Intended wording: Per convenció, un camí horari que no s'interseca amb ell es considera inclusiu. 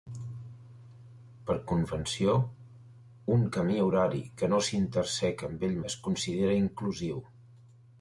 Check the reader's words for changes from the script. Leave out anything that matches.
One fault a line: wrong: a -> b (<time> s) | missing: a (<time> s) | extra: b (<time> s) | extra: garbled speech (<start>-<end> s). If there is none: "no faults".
no faults